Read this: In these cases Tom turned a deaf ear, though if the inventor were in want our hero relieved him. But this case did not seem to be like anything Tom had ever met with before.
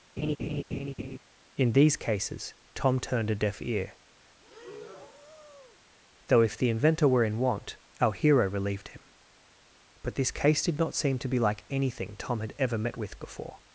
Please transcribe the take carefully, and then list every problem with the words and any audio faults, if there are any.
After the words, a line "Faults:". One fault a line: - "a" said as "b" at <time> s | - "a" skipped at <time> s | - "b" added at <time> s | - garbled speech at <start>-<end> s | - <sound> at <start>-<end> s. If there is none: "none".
In these cases Tom turned a deaf ear, though if the inventor were in want our hero relieved him. But this case did not seem to be like anything Tom had ever met with before.
Faults:
- laugh at 0.2-1.2 s
- breath at 4.4-5.8 s